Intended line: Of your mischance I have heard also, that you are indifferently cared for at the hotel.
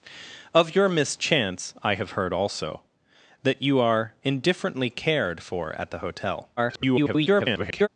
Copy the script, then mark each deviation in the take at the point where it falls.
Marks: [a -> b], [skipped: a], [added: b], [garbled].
Of your mischance I have heard also, that you are indifferently cared for at the hotel. [garbled]